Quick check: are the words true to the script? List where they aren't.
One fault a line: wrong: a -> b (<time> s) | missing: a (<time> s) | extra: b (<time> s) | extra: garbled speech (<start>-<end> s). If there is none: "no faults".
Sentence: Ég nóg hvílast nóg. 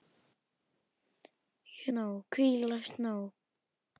no faults